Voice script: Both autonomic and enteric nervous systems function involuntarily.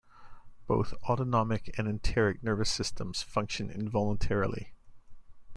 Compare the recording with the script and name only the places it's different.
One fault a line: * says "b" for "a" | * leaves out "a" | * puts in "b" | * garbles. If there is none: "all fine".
all fine